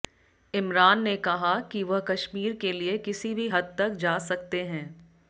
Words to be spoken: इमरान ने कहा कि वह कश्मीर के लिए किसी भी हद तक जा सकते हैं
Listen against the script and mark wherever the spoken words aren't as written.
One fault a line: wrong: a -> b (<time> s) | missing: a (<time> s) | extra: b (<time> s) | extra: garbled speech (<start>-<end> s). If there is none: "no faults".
no faults